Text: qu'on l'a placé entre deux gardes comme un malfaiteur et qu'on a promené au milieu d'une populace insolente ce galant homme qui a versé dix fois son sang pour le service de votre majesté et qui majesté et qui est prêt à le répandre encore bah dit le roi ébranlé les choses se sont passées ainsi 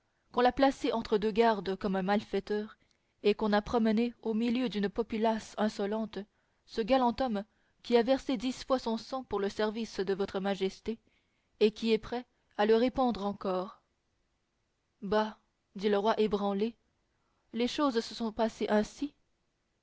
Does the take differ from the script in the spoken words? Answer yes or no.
yes